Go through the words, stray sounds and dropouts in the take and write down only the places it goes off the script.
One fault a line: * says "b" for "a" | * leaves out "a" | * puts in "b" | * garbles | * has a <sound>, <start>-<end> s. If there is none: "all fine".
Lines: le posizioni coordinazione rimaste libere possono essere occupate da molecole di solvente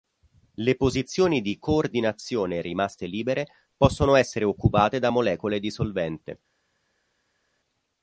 * puts in "di"